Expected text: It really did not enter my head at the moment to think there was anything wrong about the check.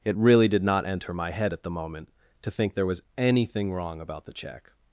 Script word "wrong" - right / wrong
right